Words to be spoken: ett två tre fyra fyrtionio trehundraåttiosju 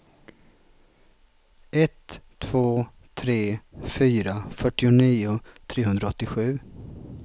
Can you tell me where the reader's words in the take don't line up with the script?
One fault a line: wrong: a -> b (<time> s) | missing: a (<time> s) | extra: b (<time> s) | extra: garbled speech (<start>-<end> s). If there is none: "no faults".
no faults